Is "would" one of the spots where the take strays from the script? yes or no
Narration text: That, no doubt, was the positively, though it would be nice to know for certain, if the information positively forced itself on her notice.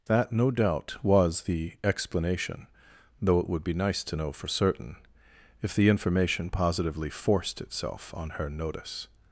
no